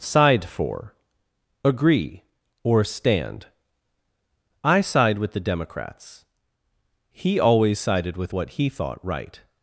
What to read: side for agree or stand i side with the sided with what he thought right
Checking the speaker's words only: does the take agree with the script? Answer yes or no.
no